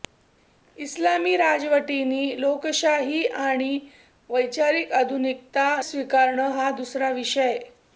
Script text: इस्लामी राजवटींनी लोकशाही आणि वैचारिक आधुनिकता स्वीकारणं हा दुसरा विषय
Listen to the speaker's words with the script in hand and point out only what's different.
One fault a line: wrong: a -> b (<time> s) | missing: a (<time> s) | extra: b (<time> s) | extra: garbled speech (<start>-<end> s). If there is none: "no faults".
no faults